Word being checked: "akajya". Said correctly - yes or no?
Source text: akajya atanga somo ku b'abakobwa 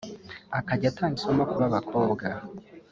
yes